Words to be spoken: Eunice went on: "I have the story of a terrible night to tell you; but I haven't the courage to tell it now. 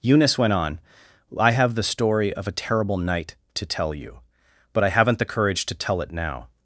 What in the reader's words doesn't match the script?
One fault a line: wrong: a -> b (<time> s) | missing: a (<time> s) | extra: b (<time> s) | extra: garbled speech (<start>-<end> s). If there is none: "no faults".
no faults